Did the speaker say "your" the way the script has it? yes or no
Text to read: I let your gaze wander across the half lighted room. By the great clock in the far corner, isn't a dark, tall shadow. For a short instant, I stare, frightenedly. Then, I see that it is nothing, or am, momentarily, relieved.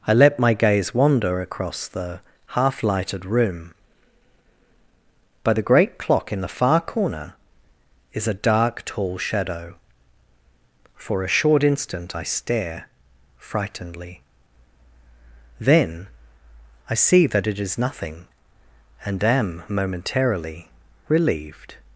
no